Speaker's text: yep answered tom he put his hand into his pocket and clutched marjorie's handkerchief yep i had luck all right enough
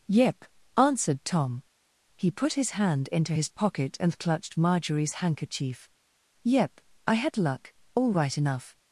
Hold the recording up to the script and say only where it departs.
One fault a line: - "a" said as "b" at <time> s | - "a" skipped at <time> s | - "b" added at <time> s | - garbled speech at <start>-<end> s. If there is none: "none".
none